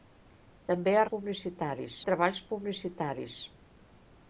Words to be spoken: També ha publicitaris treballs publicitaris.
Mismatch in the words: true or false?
false